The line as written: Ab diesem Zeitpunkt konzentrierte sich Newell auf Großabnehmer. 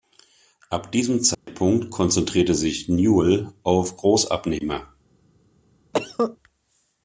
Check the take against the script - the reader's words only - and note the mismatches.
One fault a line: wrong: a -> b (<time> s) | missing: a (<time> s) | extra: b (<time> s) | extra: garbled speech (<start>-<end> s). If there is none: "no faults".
no faults